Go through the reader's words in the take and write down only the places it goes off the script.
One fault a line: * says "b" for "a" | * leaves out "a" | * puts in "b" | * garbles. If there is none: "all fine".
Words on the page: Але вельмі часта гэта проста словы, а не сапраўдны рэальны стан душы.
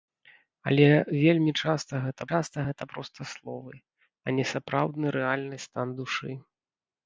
* puts in "часта гэта"